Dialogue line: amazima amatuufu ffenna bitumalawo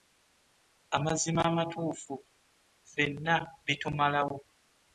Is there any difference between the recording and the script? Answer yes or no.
no